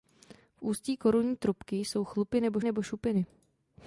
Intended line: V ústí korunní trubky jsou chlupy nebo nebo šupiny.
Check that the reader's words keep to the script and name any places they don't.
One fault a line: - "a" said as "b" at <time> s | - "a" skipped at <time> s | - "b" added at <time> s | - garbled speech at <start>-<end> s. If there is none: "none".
none